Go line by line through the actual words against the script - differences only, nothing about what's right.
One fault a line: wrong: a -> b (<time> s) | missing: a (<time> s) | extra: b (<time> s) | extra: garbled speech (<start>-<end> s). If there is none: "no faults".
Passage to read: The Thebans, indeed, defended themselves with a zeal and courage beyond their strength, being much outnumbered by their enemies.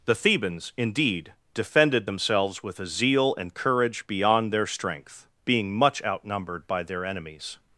no faults